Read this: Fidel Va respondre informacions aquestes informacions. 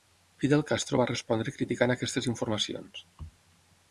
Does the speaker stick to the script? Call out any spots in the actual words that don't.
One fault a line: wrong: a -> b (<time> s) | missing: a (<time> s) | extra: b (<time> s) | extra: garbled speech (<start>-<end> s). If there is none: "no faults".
extra: Castro (0.7 s)
wrong: informacions -> criticant (1.6 s)